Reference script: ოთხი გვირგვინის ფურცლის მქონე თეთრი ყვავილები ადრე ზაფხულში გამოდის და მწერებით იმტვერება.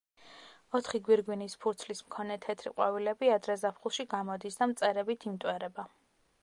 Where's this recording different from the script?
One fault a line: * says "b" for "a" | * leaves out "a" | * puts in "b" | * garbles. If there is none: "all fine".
all fine